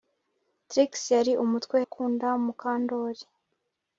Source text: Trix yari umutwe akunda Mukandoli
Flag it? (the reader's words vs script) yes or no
no